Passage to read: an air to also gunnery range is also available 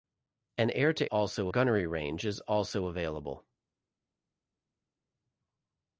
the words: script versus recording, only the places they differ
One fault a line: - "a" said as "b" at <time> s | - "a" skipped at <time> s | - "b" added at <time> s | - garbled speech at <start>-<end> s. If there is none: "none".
none